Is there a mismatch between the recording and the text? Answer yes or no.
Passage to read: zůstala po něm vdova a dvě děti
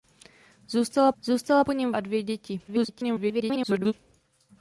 yes